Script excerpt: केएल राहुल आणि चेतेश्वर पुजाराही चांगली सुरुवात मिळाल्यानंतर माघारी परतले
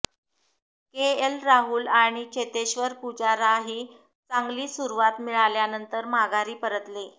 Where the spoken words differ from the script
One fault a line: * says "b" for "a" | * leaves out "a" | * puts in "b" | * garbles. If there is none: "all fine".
all fine